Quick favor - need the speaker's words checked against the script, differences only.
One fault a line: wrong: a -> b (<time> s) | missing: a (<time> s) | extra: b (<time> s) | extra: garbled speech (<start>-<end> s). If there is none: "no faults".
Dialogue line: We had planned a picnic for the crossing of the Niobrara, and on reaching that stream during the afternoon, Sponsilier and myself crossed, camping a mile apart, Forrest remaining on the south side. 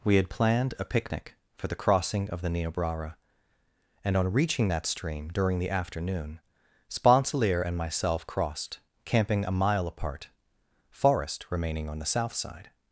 no faults